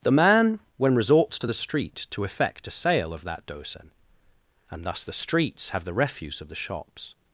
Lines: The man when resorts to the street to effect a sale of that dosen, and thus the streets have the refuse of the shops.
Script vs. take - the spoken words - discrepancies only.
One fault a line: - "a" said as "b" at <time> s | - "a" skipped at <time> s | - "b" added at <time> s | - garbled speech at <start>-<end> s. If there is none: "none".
none